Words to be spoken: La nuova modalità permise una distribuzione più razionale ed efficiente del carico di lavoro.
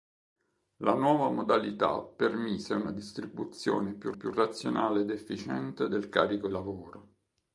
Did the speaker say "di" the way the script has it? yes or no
no